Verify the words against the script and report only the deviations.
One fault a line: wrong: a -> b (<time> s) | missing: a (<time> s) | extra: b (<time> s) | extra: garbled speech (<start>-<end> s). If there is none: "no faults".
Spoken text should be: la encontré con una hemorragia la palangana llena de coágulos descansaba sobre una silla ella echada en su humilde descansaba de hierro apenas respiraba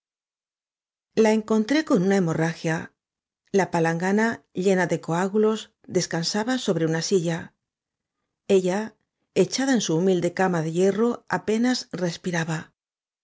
wrong: descansaba -> cama (10.3 s)